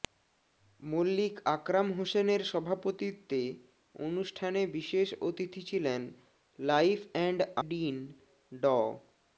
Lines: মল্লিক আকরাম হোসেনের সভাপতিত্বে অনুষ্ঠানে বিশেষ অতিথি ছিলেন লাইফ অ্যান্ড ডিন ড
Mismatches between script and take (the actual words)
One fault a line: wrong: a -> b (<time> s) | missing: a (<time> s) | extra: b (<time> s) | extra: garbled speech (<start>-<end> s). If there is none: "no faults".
no faults